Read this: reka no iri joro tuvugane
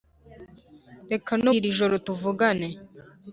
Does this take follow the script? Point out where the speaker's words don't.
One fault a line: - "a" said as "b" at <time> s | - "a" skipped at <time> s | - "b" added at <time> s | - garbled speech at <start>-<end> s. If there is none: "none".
none